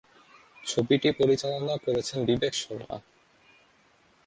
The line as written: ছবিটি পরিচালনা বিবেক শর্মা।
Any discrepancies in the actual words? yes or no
yes